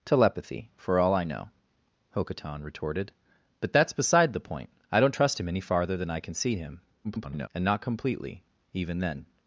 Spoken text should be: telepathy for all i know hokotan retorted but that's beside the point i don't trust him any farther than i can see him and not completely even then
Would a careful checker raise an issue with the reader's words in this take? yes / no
yes